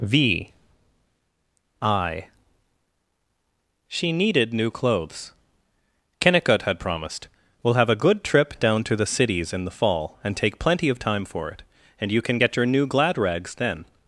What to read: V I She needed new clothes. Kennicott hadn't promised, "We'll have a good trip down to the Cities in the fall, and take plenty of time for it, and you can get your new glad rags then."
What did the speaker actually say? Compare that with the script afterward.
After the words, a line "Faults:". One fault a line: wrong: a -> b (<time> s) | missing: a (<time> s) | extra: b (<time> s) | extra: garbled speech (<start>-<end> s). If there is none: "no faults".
V I She needed new clothes. Kennicott had promised, "We'll have a good trip down to the Cities in the fall, and take plenty of time for it, and you can get your new glad rags then."
Faults:
wrong: hadn't -> had (6.6 s)